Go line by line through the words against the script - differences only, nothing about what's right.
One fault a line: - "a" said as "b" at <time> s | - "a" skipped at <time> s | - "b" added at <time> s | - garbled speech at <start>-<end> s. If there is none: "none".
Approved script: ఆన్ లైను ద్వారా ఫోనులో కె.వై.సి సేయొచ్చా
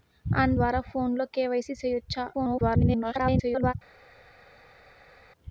- "లైను" skipped at 0.6 s
- garbled speech at 2.3-3.7 s